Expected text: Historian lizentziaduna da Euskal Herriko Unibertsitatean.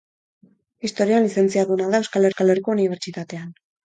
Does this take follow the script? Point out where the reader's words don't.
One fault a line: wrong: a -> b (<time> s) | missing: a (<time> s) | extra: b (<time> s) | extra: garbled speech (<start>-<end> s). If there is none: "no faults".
extra: Euskal (2.3 s)